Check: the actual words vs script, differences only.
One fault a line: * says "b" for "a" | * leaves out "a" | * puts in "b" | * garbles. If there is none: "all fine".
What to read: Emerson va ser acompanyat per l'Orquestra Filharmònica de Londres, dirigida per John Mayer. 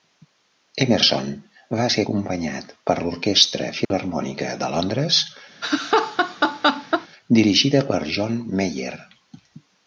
all fine